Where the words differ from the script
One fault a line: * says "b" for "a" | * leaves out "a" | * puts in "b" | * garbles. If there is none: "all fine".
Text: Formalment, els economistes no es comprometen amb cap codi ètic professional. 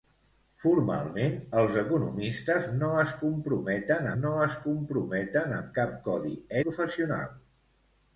* puts in "no es comprometen"
* leaves out "ètic"